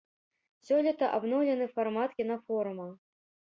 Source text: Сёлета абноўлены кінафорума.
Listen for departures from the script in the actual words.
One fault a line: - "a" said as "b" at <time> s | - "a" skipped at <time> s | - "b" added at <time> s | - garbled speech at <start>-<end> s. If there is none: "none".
- "фармат" added at 1.8 s